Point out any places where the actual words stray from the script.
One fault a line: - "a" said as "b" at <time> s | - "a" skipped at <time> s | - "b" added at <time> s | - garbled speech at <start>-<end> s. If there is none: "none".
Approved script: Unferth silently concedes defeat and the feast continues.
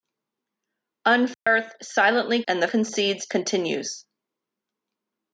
- "concedes defeat" skipped at 2.4 s
- "feast" said as "concedes" at 2.6 s